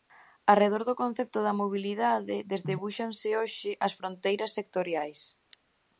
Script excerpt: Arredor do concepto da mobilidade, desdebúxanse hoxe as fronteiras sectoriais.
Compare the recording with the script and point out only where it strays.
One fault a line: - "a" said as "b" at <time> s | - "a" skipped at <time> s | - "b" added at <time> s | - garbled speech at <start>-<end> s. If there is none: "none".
none